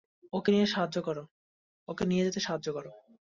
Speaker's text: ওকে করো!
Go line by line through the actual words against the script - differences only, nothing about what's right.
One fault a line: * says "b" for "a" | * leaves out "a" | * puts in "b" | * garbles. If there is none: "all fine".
* puts in "নিয়ে যেতে সাহায্য"